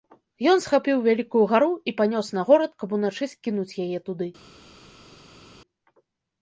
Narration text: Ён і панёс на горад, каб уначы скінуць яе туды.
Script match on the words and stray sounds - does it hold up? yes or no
no